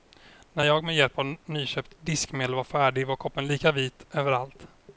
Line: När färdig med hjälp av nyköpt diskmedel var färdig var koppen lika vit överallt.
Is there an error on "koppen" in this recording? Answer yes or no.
no